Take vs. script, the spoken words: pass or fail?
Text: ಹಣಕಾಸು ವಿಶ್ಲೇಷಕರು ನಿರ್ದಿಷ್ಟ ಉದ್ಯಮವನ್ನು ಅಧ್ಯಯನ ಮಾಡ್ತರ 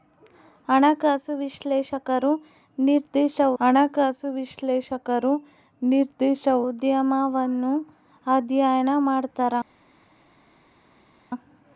fail